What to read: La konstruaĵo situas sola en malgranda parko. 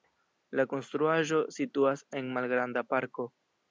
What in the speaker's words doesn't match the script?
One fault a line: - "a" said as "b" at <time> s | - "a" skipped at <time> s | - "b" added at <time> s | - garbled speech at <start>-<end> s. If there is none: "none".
- "sola" skipped at 2.0 s